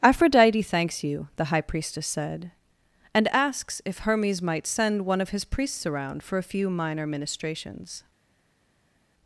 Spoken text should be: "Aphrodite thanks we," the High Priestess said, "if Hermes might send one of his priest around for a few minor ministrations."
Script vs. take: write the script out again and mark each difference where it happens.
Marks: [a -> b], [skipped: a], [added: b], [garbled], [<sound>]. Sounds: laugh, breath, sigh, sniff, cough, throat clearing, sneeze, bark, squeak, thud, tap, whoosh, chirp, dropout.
"Aphrodite thanks [we," -> you] the High Priestess said, [added: and asks] "if Hermes might send one of his [priest -> priests] around for a few minor ministrations."